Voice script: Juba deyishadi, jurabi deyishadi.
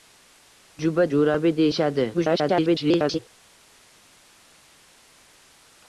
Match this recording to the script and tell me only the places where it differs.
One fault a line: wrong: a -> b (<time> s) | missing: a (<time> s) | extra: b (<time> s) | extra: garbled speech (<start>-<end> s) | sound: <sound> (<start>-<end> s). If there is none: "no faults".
missing: deyishadi (1.1 s)
extra: garbled speech (2.1-3.2 s)